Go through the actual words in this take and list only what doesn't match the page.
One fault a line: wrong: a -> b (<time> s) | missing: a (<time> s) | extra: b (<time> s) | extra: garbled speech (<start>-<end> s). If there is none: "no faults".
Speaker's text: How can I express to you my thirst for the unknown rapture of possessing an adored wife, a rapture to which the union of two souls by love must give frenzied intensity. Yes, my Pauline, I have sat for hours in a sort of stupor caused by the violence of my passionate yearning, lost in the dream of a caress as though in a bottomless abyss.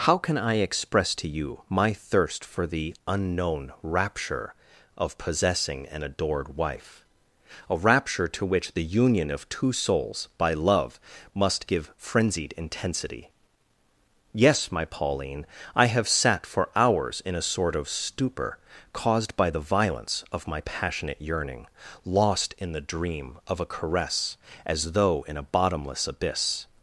no faults